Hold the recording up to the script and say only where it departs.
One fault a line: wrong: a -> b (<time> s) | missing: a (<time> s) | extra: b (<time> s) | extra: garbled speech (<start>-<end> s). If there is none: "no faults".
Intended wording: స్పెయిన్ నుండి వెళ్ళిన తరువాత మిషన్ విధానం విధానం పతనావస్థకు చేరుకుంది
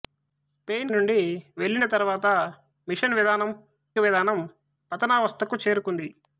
no faults